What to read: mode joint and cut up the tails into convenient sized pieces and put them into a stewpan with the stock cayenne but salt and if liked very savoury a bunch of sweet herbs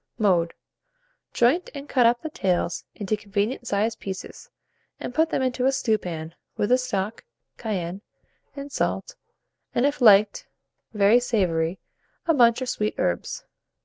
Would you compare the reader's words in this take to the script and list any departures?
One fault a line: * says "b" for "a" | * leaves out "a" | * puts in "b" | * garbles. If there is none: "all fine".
* says "and" for "but"